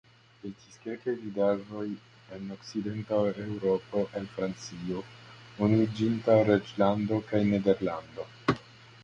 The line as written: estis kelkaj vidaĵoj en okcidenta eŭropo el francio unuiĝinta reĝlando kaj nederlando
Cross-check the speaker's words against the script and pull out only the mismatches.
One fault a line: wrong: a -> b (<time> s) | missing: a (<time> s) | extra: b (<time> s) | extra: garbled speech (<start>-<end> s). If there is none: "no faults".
no faults